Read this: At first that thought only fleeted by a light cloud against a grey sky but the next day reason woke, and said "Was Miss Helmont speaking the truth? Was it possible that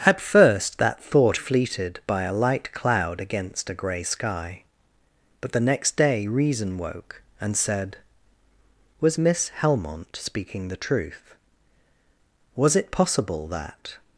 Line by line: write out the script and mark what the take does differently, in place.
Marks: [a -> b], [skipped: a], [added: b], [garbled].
At first that thought [skipped: only] fleeted by a light cloud against a grey sky but the next day reason woke, and said "Was Miss Helmont speaking the truth? Was it possible that